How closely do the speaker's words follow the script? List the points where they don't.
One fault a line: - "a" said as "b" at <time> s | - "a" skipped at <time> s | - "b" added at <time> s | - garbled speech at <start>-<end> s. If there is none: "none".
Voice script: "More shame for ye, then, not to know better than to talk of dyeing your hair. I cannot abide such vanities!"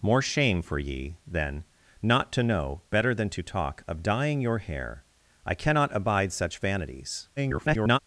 - garbled speech at 7.4-8.0 s